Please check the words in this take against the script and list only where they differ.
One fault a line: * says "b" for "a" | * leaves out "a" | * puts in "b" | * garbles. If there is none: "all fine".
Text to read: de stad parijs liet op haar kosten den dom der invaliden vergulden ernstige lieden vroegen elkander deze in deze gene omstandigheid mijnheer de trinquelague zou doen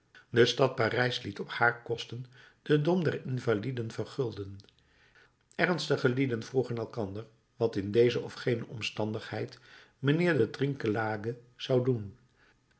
* says "wat" for "deze"
* puts in "of"